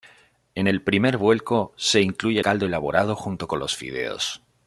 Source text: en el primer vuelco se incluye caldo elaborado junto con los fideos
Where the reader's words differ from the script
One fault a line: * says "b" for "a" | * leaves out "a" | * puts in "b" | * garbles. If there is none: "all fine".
all fine